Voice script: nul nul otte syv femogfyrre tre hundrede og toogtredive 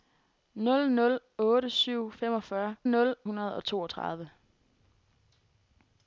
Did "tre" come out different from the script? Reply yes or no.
yes